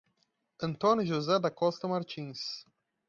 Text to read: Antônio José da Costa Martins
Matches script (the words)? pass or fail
pass